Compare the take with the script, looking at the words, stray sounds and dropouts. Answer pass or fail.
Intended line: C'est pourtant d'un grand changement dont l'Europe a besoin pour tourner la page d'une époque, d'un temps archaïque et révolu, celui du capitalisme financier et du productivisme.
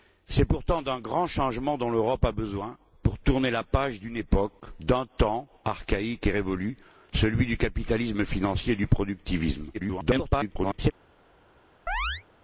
fail